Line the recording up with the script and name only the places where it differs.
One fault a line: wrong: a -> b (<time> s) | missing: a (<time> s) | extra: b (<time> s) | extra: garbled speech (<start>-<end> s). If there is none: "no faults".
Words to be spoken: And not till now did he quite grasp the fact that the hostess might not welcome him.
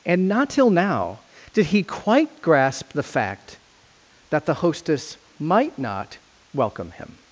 no faults